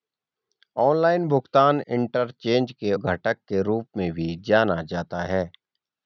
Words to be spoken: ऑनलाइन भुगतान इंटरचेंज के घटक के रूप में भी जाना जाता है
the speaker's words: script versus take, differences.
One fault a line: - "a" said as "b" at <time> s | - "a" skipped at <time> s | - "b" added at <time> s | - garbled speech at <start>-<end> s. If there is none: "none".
none